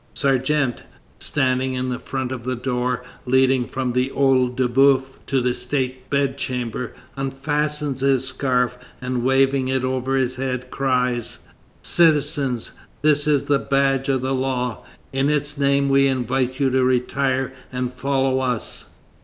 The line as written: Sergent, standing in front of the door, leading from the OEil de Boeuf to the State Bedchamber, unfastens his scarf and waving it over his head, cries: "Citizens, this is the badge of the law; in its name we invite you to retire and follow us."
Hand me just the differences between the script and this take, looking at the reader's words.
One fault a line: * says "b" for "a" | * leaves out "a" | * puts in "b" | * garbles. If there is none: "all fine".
all fine